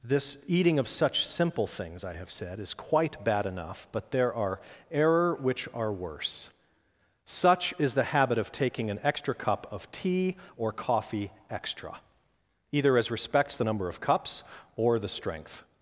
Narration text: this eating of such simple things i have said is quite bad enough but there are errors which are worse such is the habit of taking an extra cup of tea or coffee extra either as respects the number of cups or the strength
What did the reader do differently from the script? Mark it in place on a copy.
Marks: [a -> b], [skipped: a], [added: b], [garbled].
this eating of such simple things i have said is quite bad enough but there are [errors -> error] which are worse such is the habit of taking an extra cup of tea or coffee extra either as respects the number of cups or the strength